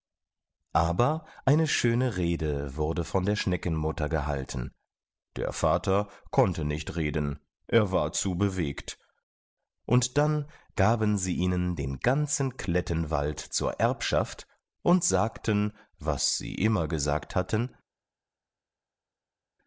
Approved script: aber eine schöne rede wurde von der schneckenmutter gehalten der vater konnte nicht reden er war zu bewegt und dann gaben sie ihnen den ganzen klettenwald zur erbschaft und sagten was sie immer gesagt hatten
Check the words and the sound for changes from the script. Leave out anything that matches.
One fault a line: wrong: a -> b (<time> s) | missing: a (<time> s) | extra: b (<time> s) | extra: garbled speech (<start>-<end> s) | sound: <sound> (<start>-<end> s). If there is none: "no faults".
no faults